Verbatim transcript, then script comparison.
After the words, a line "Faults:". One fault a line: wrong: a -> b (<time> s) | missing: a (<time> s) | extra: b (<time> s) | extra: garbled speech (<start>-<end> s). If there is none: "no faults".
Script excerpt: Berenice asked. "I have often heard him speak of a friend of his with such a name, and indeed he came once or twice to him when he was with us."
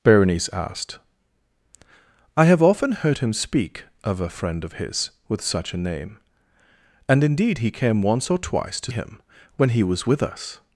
Berenice asked. "I have often heard him speak of a friend of his with such a name, and indeed he came once or twice to him when he was with us."
Faults:
no faults